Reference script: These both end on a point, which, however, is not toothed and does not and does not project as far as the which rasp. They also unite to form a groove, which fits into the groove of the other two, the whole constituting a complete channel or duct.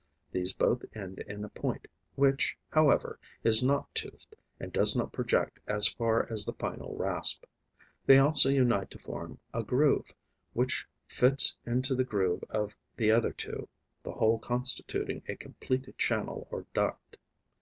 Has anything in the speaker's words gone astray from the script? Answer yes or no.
yes